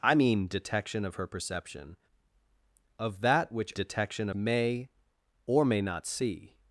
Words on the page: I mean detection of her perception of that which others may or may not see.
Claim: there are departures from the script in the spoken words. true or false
true